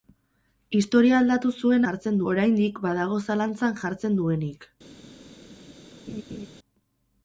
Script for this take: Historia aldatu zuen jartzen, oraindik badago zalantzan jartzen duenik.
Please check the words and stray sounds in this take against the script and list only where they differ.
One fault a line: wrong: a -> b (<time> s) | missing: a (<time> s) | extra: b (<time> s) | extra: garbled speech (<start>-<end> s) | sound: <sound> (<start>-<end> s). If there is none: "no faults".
sound: laugh (6.1-6.5 s)